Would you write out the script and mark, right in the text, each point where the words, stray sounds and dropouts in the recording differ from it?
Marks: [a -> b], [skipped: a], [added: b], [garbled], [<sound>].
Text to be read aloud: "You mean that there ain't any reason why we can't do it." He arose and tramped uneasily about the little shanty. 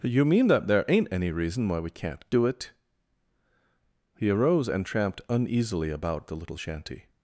"You mean that there ain't any reason why we can't do it." He arose and tramped uneasily about the little shanty.